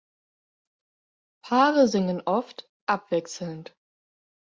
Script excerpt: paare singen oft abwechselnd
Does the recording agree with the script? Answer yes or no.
yes